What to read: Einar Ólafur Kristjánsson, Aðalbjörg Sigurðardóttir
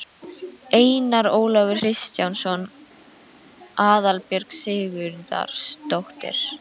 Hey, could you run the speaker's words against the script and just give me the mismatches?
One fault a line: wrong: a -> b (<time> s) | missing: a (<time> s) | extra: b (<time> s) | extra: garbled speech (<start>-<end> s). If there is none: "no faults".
no faults